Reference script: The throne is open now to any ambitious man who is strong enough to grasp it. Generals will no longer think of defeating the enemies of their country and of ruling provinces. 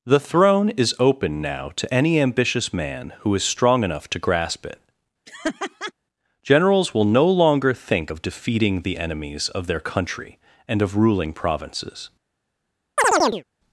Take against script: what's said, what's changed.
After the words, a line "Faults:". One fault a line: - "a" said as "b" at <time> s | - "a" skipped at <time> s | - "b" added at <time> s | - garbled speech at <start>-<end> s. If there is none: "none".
The throne is open now to any ambitious man who is strong enough to grasp it. Generals will no longer think of defeating the enemies of their country and of ruling provinces.
Faults:
none